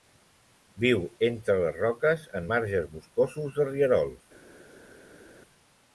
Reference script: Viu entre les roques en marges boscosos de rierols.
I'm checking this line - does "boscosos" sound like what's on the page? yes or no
yes